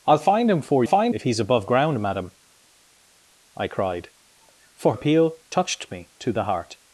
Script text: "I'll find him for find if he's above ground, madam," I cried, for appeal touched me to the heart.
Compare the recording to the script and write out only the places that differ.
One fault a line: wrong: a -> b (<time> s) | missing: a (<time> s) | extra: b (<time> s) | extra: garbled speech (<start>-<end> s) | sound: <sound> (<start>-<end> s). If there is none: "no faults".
no faults